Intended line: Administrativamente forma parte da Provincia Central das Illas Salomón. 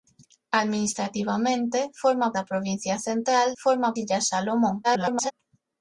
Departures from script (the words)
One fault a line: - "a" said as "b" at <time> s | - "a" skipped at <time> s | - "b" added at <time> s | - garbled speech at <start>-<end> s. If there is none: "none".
- "parte" skipped at 2.3 s
- "das" said as "forma" at 3.6 s
- garbled speech at 4.8-5.3 s